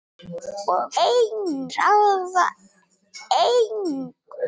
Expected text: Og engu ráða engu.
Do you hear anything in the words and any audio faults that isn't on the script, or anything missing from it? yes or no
no